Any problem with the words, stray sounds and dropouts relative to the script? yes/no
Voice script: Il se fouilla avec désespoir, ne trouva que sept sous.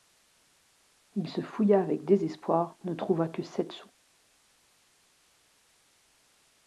no